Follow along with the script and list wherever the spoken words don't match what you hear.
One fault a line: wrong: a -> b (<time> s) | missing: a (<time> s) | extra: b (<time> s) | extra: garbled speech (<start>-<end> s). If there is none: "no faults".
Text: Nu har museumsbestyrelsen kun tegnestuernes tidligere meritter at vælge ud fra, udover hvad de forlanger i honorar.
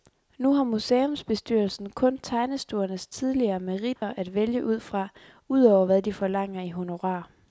no faults